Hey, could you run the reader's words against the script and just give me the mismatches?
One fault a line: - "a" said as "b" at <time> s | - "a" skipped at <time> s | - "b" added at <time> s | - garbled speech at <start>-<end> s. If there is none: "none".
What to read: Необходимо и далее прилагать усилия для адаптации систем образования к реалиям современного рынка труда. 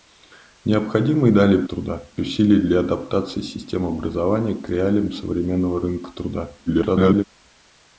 - "прилагать" said as "труда" at 1.6 s
- garbled speech at 6.7-7.2 s